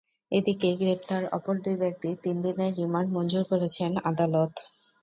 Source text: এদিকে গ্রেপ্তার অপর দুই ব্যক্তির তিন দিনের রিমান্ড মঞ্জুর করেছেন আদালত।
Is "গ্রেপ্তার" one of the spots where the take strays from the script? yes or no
no